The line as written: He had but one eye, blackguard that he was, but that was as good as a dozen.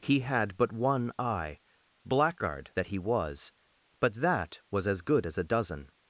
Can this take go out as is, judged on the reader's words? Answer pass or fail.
pass